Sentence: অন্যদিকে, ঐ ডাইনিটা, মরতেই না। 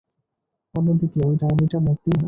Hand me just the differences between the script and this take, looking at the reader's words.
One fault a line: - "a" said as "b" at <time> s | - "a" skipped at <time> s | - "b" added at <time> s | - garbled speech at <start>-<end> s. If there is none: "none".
none